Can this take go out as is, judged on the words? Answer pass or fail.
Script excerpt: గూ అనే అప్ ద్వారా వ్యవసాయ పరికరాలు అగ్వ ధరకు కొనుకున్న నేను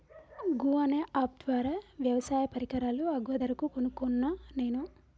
pass